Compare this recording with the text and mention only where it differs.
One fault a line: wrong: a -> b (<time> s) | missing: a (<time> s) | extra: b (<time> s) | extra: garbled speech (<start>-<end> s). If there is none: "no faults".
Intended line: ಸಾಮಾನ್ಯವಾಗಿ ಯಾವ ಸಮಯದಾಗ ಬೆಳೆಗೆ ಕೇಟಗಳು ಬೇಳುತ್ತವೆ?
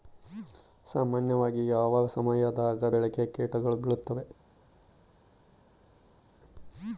no faults